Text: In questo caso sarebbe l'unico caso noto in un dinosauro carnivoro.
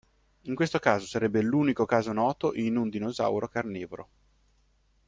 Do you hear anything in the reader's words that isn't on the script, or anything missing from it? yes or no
no